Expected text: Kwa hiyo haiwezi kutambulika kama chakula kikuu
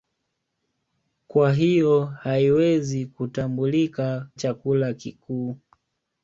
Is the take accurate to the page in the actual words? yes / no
no